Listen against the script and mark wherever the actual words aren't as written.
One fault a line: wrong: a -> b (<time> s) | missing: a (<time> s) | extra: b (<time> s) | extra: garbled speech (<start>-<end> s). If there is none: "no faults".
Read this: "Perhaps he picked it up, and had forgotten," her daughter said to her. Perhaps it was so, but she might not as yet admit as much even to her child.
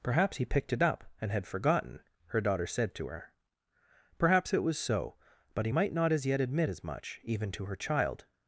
wrong: she -> he (5.6 s)